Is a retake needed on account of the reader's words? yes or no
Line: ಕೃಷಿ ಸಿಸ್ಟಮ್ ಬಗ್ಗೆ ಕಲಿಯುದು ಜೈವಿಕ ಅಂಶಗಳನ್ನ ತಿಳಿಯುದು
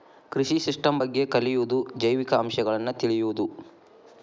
no